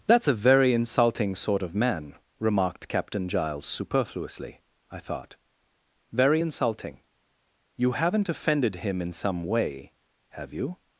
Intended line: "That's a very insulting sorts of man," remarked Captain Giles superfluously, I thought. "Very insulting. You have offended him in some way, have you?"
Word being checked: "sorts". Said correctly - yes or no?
no